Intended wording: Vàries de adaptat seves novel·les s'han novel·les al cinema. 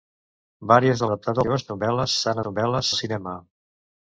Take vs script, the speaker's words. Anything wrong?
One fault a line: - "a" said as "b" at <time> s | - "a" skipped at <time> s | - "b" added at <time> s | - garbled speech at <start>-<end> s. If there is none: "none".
none